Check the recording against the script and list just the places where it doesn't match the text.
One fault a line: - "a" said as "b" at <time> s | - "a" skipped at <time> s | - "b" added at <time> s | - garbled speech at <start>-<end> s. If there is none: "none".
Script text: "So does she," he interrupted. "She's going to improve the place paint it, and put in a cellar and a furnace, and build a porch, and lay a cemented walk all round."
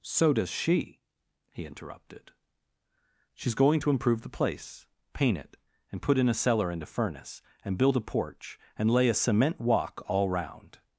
- "cemented" said as "cement" at 9.1 s